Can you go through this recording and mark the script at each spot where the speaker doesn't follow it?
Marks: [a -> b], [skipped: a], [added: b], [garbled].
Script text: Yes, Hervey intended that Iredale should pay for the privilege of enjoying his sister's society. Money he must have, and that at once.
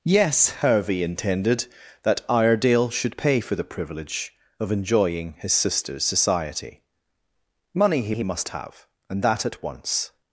Yes, Hervey intended that Iredale should pay for the privilege of enjoying his sister's society. Money he [added: he] must have, and that at once.